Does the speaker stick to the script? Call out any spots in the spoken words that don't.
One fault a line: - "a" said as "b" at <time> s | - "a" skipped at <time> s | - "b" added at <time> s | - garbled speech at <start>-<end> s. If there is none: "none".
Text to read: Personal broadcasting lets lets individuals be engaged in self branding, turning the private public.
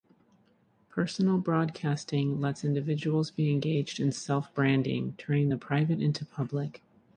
- "lets" skipped at 2.6 s
- "into" added at 6.0 s